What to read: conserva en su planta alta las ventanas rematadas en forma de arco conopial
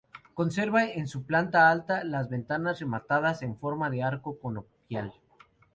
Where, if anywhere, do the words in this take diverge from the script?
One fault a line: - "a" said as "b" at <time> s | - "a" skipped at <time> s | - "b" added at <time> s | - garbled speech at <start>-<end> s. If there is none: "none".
none